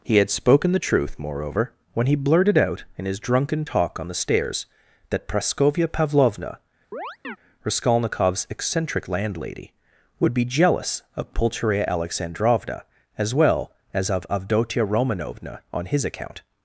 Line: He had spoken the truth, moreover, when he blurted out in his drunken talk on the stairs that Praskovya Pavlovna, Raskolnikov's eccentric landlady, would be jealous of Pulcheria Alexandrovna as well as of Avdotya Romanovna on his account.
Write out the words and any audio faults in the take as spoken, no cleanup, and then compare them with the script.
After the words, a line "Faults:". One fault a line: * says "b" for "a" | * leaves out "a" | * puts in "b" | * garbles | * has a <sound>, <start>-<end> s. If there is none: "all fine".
He had spoken the truth, moreover, when he blurted out in his drunken talk on the stairs that Praskovya Pavlovna, Raskolnikov's eccentric landlady, would be jealous of Pulcheria Alexandrovna as well as of Avdotya Romanovna on his account.
Faults:
* has a chirp, 6.9-7.4 s